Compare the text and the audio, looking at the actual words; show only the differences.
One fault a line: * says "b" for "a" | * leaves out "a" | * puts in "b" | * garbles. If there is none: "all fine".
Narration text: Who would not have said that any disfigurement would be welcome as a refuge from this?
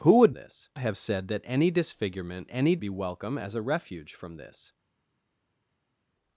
* says "this" for "not"
* says "any" for "would"